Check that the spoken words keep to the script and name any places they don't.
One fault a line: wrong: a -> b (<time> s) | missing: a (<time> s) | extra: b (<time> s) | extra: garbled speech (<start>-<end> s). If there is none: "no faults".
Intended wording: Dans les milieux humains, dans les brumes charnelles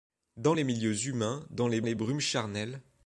extra: les (1.8 s)